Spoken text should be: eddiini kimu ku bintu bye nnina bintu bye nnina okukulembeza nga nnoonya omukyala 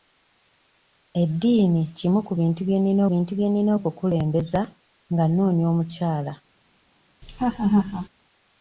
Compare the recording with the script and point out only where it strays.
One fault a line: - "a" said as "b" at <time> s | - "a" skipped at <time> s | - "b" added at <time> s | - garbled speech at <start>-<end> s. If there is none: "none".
none